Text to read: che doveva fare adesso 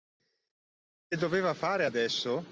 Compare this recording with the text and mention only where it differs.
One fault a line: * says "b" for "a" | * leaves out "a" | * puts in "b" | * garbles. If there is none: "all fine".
all fine